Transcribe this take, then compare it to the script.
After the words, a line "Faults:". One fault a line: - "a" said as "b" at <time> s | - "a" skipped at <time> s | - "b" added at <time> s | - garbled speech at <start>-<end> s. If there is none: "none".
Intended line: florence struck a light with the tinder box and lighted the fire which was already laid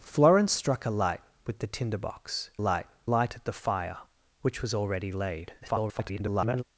florence struck a light with the tinder box light lighted the fire which was already laid [garbled]
Faults:
- "and" said as "light" at 2.6 s
- garbled speech at 5.6-6.6 s